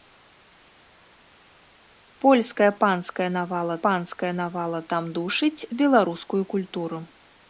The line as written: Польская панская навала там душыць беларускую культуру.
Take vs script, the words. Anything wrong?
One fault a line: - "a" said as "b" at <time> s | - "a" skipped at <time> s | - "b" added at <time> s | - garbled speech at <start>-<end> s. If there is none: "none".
- "панская навала" added at 3.8 s